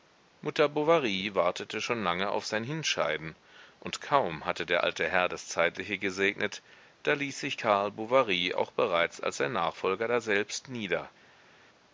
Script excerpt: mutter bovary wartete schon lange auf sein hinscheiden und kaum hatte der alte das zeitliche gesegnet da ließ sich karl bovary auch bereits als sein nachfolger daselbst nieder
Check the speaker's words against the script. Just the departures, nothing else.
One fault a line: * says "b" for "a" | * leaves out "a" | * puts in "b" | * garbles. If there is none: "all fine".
* puts in "herr"